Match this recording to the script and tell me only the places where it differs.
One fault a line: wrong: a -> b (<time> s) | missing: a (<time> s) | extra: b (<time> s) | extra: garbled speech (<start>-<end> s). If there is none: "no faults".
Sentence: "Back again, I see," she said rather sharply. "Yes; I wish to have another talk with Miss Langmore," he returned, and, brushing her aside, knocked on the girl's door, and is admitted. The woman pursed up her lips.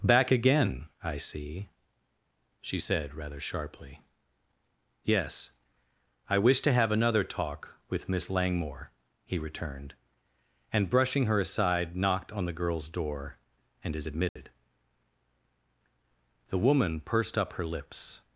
no faults